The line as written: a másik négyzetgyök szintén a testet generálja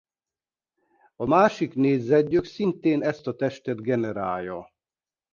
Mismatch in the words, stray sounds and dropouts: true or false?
true